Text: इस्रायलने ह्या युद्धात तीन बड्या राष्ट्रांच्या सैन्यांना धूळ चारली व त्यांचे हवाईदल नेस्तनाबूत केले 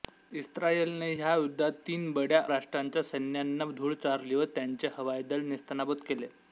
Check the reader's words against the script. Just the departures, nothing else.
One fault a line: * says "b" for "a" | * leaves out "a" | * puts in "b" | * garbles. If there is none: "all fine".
all fine